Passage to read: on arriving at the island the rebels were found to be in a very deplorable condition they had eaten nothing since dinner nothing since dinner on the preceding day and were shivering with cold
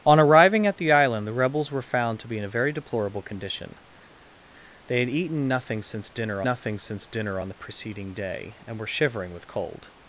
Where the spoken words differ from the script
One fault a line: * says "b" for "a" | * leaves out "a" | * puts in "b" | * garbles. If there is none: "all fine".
all fine